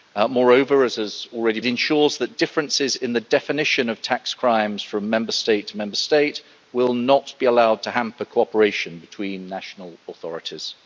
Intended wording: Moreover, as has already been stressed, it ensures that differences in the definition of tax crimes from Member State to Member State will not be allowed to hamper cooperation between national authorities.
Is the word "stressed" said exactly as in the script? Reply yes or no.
no